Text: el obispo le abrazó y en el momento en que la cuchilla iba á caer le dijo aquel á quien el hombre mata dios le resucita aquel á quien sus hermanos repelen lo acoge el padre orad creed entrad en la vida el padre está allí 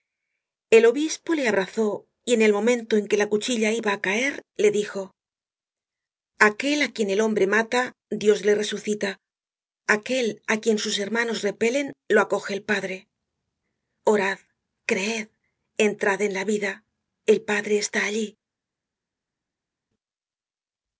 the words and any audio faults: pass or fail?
pass